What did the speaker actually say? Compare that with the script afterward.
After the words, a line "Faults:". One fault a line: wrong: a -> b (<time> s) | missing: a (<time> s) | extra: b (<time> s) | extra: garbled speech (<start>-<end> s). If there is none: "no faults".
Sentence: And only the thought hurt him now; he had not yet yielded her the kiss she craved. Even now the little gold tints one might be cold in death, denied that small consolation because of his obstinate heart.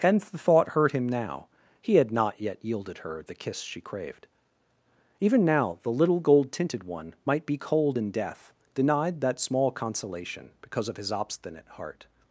And the thought hurt him now; he had not yet yielded her the kiss she craved. Even now the little gold tinted one might be cold in death, denied that small consolation because of his obstinate heart.
Faults:
missing: only (0.2 s)
wrong: tints -> tinted (6.5 s)